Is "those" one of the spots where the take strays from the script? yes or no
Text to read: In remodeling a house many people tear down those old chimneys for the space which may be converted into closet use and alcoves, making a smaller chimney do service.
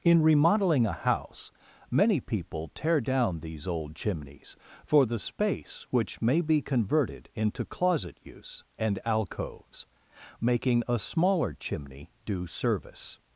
yes